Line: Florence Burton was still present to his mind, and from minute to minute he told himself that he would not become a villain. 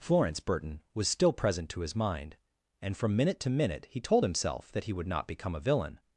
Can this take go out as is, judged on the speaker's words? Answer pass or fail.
pass